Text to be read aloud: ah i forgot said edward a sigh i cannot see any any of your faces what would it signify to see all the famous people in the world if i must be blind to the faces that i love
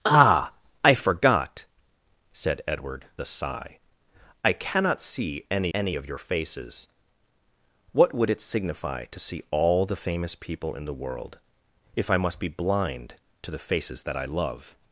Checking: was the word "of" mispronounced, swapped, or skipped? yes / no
no